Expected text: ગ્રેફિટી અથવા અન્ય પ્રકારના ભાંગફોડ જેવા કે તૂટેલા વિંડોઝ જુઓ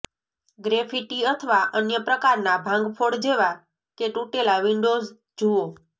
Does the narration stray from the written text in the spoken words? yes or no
no